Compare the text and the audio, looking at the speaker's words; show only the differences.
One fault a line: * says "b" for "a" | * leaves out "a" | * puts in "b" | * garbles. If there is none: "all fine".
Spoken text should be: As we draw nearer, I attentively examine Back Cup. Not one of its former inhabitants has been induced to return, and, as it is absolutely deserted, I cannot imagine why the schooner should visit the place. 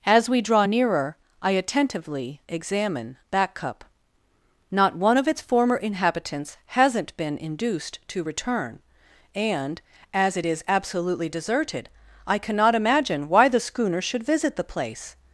* says "hasn't" for "has"